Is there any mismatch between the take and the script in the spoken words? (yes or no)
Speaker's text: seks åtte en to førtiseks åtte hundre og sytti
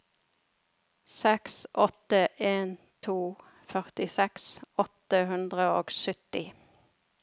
no